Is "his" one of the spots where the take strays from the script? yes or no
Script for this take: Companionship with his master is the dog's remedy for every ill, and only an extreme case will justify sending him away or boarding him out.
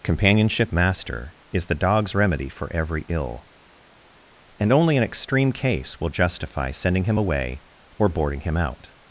yes